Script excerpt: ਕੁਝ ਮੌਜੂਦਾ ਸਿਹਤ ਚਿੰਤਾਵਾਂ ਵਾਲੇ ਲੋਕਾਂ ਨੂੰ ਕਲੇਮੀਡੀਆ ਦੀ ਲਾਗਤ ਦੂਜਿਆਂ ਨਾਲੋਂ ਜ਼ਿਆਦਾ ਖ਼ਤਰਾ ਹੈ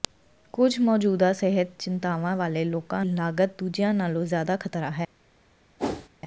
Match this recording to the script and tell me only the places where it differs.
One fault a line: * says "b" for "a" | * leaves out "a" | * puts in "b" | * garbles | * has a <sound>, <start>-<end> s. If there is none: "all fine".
* leaves out "ਨੂੰ ਕਲੇਮੀਡੀਆ ਦੀ"
* has a whoosh, 5.8-6.1 s